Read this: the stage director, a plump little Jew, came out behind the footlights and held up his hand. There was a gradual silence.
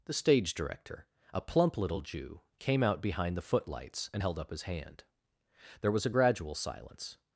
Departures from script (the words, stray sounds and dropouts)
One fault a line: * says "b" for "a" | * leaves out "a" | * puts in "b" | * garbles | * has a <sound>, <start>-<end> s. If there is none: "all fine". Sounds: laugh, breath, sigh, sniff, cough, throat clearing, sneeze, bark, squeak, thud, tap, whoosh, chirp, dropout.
all fine